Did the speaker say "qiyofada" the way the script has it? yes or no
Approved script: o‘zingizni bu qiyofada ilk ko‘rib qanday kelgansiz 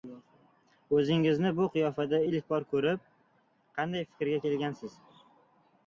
yes